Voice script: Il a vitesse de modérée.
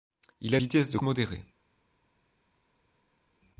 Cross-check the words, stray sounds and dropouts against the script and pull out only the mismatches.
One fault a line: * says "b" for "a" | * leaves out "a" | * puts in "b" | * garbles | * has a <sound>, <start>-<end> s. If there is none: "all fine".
all fine